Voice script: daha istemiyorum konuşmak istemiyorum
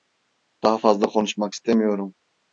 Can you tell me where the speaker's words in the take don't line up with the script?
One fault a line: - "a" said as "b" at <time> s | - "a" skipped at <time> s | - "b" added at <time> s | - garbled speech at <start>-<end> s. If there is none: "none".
- "istemiyorum" said as "fazla" at 0.8 s